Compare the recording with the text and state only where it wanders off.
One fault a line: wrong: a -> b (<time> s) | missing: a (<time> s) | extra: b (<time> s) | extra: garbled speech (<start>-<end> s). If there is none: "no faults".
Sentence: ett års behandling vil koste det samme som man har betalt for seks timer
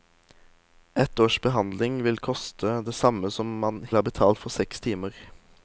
no faults